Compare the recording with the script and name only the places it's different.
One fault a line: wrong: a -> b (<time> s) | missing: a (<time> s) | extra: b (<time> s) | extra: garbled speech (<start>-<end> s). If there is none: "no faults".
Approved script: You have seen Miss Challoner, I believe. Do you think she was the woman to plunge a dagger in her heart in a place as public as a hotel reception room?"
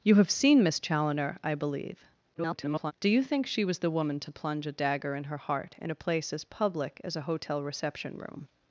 extra: garbled speech (2.3-2.9 s)